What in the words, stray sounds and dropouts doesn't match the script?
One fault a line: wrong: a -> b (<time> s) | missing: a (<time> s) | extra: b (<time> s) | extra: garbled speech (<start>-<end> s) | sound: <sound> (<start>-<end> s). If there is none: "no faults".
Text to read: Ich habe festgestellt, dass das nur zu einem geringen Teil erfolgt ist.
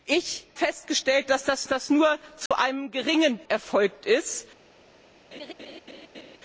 missing: habe (0.5 s)
extra: das (1.7 s)
sound: dropout (2.5-2.5 s)
missing: Teil (3.4 s)
sound: laugh (5.3-6.4 s)